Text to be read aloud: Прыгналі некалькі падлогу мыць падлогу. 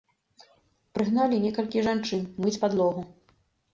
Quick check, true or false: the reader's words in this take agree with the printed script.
false